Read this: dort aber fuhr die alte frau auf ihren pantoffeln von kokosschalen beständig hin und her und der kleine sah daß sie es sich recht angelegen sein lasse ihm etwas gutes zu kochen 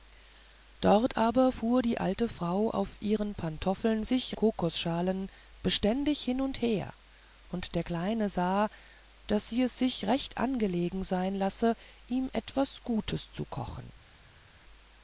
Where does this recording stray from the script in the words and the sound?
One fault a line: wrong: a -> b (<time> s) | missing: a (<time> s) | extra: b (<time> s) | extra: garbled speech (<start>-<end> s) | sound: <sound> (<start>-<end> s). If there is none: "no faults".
wrong: von -> sich (4.1 s)